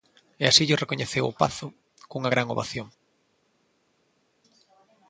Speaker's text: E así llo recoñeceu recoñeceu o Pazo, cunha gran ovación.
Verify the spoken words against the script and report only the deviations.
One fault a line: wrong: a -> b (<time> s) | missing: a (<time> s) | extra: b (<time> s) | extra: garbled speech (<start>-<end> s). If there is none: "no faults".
missing: recoñeceu (1.2 s)